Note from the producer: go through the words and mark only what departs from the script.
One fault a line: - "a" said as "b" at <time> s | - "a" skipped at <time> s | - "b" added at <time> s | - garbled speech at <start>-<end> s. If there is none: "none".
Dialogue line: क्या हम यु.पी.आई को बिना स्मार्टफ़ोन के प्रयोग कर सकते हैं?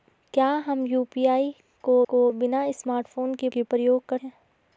- "को" added at 2.1 s
- "के" added at 3.5 s
- "सकते" skipped at 4.2 s